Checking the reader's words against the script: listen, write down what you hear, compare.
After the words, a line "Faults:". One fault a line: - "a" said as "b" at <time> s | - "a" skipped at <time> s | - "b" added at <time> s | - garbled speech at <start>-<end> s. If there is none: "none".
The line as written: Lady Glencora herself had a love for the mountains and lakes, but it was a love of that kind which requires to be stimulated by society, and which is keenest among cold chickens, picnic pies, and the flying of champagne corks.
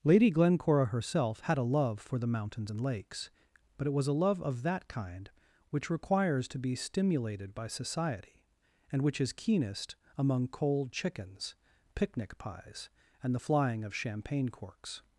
Lady Glencora herself had a love for the mountains and lakes, but it was a love of that kind which requires to be stimulated by society, and which is keenest among cold chickens, picnic pies, and the flying of champagne corks.
Faults:
none